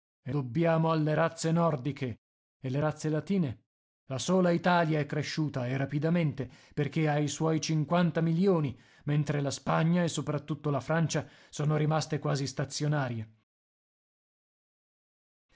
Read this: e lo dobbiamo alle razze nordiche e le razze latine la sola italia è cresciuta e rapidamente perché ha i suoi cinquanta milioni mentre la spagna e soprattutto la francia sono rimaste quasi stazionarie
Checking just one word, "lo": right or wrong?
wrong